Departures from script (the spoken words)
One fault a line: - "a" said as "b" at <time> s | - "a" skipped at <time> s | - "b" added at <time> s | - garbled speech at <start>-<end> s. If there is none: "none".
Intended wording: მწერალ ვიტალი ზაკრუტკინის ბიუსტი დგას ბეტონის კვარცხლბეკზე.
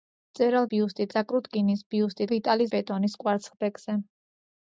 - "ვიტალი" said as "ბიუსტი" at 0.7 s
- "დგას" said as "ვიტალი" at 2.3 s